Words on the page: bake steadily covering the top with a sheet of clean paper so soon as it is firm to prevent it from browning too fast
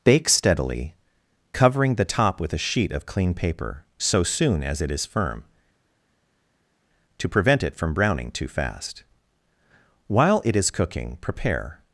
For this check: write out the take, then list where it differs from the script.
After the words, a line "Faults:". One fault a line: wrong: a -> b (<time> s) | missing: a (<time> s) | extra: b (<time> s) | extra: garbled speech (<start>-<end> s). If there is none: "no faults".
bake steadily covering the top with a sheet of clean paper so soon as it is firm to prevent it from browning too fast while it is cooking prepare
Faults:
extra: while it is cooking prepare (10.1 s)